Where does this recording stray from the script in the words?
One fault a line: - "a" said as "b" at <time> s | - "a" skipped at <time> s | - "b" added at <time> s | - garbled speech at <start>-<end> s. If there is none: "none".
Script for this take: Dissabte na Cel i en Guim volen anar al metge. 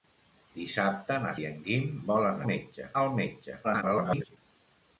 - "Cel" skipped at 1.3 s
- "anar" said as "metge" at 2.5 s
- garbled speech at 3.6-4.4 s